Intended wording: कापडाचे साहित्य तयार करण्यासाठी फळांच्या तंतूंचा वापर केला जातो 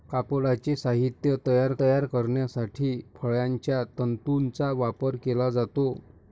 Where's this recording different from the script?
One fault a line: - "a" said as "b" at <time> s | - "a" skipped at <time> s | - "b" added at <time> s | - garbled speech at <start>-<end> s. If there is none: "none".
- "तयार" added at 1.8 s